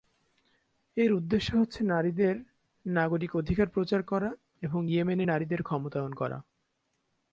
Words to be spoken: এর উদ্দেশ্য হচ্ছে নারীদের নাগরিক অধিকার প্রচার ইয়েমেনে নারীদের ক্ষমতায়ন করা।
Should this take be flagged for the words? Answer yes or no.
yes